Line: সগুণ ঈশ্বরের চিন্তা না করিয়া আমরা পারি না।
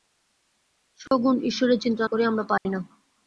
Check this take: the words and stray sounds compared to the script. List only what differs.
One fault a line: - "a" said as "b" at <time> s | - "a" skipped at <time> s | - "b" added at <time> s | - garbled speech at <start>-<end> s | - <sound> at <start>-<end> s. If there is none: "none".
- dropout at 1.1-1.1 s
- "না" skipped at 2.0 s
- dropout at 2.6-2.7 s